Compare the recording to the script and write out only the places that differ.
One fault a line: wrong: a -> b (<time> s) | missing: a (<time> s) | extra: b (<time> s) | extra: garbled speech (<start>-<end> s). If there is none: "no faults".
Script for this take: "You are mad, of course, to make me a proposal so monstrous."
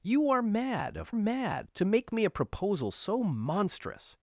wrong: course -> mad (1.1 s)